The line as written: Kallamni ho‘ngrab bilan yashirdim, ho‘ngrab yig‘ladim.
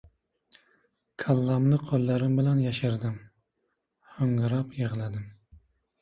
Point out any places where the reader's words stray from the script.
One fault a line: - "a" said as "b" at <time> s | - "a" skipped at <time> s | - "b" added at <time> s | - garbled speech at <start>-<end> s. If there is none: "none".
- "ho‘ngrab" said as "qo‘llarim" at 1.9 s